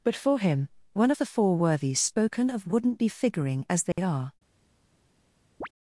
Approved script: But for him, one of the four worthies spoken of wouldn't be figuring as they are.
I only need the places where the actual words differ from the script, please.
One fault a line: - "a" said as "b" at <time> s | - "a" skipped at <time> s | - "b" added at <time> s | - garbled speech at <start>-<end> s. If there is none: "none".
none